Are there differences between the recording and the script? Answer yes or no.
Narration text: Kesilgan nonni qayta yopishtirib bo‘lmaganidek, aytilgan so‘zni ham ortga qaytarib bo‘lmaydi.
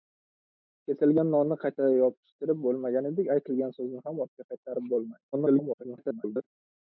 yes